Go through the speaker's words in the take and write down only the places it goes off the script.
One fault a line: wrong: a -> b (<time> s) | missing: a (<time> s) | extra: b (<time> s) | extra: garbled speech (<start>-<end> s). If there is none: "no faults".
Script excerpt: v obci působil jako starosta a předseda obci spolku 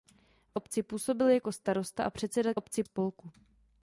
no faults